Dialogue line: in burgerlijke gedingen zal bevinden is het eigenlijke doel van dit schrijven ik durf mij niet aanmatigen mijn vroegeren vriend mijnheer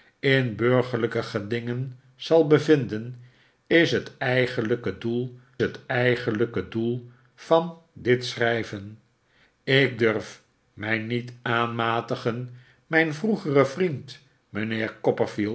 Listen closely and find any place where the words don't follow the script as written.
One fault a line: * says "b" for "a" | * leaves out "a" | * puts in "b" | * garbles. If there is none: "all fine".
* puts in "het eigenlijke doel"